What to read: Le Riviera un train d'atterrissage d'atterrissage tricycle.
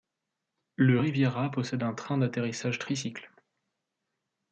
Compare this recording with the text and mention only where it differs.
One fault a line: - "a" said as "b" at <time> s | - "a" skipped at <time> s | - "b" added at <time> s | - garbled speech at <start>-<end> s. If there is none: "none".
- "possède" added at 1.5 s
- "d'atterrissage" skipped at 2.8 s